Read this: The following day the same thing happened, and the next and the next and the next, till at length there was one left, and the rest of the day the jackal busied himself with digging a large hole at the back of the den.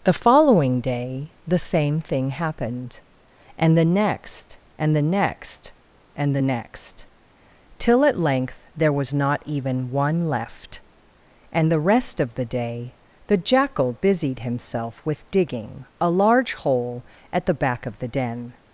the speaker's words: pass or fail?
fail